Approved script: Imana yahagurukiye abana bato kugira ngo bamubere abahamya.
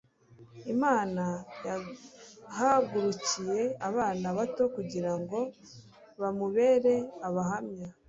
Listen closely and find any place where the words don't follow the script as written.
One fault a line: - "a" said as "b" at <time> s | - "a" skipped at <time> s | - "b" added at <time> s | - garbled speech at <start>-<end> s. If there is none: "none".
none